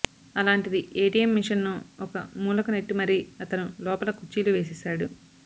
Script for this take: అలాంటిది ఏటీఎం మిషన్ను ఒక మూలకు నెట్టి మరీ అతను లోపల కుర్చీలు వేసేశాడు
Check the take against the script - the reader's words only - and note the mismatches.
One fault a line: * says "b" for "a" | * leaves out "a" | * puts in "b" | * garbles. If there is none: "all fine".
all fine